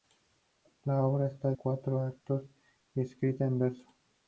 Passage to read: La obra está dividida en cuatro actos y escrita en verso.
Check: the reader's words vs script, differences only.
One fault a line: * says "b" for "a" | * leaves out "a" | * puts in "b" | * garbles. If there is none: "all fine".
* leaves out "dividida en"